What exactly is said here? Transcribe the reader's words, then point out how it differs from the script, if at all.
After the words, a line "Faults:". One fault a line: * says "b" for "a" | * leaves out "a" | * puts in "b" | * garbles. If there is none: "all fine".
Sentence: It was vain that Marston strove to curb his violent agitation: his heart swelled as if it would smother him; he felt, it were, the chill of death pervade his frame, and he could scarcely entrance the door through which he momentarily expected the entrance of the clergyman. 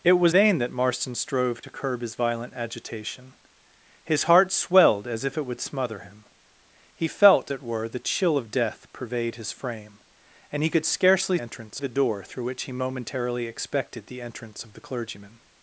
It was vain that Marston strove to curb his violent agitation: his heart swelled as if it would smother him; he felt, it were, the chill of death pervade his frame, and he could scarcely entrance the door through which he momentarily expected the entrance of the clergyman.
Faults:
all fine